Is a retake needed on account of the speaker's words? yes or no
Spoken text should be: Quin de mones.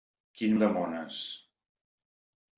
no